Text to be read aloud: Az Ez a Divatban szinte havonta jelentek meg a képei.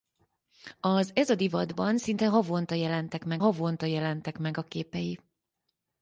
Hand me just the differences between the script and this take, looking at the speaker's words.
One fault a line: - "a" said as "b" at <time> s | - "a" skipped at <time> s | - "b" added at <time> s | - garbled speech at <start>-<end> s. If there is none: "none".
- "havonta jelentek meg" added at 3.4 s